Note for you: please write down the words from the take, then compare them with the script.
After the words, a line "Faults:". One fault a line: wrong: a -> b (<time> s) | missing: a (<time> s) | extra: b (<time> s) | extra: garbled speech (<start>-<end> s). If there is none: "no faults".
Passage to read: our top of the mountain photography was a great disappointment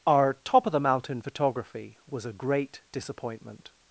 our top of the mountain photography was a great disappointment
Faults:
no faults